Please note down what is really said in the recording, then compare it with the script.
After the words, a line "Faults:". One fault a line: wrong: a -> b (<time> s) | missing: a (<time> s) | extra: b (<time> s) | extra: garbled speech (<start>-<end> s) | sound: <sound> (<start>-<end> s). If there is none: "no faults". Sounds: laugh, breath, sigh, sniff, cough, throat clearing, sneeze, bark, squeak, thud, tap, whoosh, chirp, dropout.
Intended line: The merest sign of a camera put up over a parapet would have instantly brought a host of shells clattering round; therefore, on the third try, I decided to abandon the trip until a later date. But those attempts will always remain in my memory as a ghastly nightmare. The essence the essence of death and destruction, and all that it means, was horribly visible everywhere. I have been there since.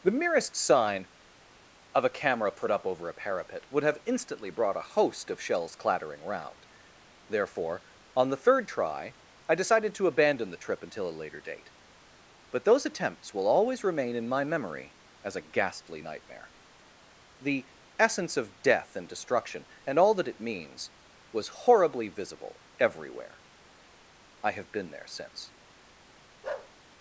The merest sign of a camera put up over a parapet would have instantly brought a host of shells clattering round; therefore, on the third try, I decided to abandon the trip until a later date. But those attempts will always remain in my memory as a ghastly nightmare. The essence of death and destruction, and all that it means, was horribly visible everywhere. I have been there since.
Faults:
missing: the essence (18.4 s)
sound: bark (26.4-26.7 s)